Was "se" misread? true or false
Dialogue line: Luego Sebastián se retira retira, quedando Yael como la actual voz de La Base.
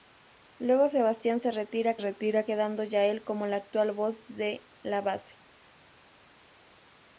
false